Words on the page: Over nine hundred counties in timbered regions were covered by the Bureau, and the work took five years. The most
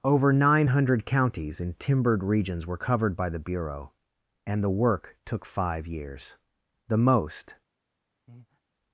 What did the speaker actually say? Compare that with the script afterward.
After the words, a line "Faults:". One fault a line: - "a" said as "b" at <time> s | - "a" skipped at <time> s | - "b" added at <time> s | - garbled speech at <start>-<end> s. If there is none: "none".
Over nine hundred counties in timbered regions were covered by the Bureau, and the work took five years. The most
Faults:
none